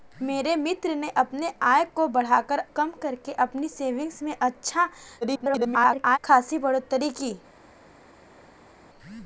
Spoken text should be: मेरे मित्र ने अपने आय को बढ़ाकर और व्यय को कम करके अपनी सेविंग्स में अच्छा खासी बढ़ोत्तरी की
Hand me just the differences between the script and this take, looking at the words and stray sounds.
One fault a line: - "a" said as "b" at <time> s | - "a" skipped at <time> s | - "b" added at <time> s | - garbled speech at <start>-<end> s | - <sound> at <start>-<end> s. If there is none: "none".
- "और व्यय को" skipped at 2.6 s
- garbled speech at 5.2-6.2 s